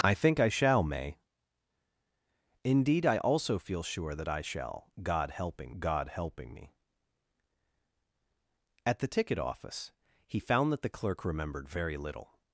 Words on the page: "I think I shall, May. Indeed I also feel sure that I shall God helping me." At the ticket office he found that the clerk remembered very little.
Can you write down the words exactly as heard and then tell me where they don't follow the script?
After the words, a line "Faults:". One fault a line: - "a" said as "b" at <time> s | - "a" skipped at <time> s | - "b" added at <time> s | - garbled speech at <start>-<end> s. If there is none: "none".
"I think I shall, May. Indeed I also feel sure that I shall God helping God helping me." At the ticket office he found that the clerk remembered very little.
Faults:
- "God helping" added at 5.8 s